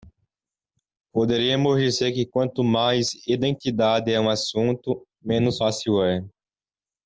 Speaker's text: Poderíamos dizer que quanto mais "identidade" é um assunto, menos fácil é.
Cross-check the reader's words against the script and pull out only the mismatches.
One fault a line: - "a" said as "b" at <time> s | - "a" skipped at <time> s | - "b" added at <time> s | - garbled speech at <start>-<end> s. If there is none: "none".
none